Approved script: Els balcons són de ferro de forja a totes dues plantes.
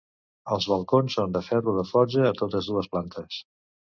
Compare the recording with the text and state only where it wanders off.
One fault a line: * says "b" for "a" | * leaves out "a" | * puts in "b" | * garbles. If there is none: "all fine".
all fine